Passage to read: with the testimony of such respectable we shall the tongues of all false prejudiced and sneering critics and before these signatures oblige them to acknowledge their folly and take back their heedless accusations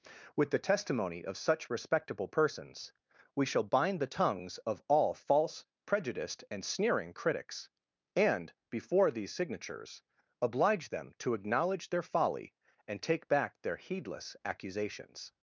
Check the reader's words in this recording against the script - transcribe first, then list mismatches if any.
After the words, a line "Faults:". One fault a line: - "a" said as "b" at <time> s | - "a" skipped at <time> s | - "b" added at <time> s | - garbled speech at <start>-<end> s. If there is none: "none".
with the testimony of such respectable persons we shall bind the tongues of all false prejudiced and sneering critics and before these signatures oblige them to acknowledge their folly and take back their heedless accusations
Faults:
- "persons" added at 2.3 s
- "bind" added at 3.6 s